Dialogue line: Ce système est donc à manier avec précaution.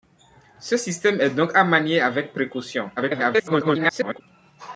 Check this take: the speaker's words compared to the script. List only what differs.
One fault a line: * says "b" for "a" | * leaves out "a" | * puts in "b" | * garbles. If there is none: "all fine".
* garbles